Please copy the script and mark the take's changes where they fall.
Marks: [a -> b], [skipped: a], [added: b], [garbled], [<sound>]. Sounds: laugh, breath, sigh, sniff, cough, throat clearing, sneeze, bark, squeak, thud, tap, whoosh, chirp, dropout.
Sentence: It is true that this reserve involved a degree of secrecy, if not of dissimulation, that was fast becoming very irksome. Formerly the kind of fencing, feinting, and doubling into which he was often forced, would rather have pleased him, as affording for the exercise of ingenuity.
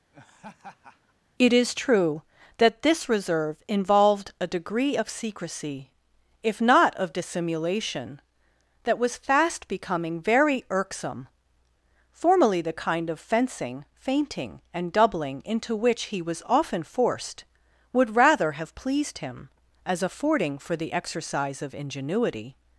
[laugh] It is true that this reserve involved a degree of secrecy, if not of dissimulation, that was fast becoming very irksome. Formerly the kind of fencing, feinting, and doubling into which he was often forced, would rather have pleased him, as affording for the exercise of ingenuity.